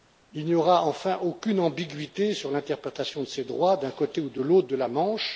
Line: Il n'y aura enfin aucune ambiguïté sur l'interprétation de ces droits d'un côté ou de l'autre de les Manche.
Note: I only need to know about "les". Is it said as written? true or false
false